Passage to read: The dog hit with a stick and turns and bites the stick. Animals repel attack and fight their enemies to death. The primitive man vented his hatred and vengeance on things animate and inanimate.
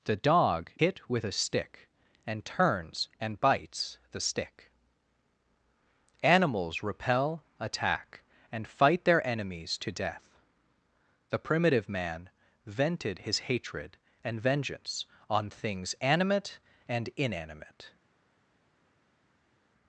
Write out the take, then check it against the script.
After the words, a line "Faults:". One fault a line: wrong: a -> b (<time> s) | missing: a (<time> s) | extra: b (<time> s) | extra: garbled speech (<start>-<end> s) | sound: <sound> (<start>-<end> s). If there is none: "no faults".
The dog hit with a stick and turns and bites the stick. Animals repel attack and fight their enemies to death. The primitive man vented his hatred and vengeance on things animate and inanimate.
Faults:
no faults